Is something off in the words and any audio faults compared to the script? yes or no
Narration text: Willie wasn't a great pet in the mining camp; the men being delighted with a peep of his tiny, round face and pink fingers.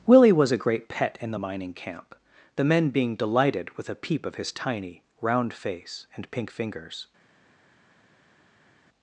yes